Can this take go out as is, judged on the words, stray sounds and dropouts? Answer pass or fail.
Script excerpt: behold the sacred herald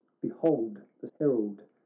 fail